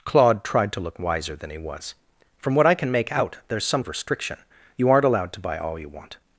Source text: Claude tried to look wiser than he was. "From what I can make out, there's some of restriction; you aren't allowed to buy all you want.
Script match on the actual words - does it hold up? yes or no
yes